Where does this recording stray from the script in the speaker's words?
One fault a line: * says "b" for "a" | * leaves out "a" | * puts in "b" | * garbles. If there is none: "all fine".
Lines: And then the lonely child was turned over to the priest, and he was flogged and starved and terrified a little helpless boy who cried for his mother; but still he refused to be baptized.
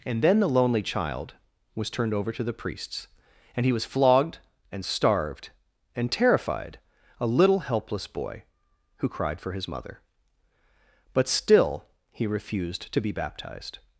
* says "priests" for "priest"